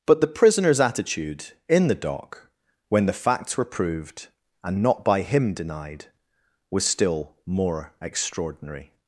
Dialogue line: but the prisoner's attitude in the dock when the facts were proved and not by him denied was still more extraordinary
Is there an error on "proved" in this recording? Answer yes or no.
no